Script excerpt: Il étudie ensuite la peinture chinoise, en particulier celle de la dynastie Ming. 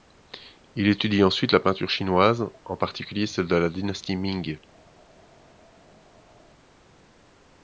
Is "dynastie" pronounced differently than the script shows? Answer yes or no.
no